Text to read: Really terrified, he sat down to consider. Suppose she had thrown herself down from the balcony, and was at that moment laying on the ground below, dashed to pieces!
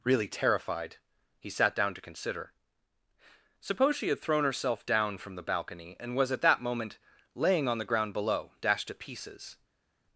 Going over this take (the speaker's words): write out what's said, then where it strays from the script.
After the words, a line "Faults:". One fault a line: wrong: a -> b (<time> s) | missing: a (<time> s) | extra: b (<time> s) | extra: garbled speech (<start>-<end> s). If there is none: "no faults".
Really terrified, he sat down to consider. Suppose she had thrown herself down from the balcony, and was at that moment laying on the ground below, dashed to pieces!
Faults:
no faults